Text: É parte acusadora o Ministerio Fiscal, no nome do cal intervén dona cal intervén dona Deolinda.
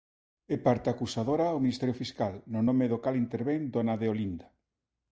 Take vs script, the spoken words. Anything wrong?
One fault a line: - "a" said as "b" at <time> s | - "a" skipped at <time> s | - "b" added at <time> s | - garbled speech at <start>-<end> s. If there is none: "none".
- "cal intervén dona" skipped at 3.9 s